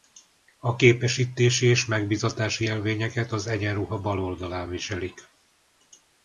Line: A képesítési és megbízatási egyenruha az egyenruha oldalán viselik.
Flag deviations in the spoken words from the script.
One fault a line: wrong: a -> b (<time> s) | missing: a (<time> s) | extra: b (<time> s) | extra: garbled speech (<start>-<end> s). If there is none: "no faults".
wrong: egyenruha -> jelvényeket (2.6 s)
extra: bal (4.0 s)